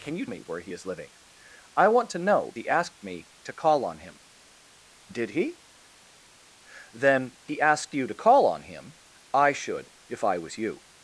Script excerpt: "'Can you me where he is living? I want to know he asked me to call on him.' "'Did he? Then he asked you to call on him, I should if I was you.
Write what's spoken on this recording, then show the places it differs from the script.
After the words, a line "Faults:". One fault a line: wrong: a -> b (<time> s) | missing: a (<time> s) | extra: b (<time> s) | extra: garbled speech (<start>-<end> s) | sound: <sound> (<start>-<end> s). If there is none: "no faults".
"'Can you me where he is living? I want to know he asked me to call on him.' "'Did he? Then he asked you to call on him, I should if I was you.
Faults:
no faults